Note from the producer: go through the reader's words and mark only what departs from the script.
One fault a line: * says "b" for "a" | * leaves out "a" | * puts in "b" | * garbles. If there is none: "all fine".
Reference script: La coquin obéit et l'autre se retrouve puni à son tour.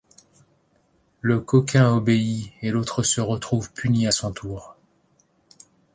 * says "Le" for "La"